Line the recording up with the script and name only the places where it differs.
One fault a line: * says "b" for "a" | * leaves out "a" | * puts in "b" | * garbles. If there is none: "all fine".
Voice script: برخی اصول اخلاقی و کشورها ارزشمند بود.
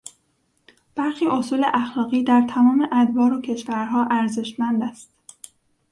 * puts in "در تمام ادوار"
* says "است" for "بود"